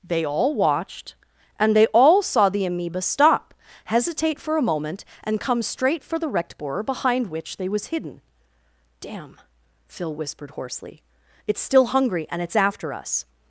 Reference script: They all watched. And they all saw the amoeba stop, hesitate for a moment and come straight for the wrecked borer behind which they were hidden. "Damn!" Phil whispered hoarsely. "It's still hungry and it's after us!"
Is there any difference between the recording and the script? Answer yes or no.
yes